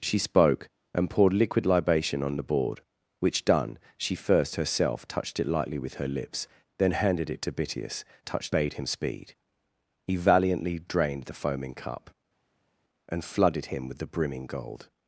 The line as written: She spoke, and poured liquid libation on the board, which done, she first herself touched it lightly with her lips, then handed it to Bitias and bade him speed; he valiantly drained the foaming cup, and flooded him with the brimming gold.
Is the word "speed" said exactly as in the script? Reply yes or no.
yes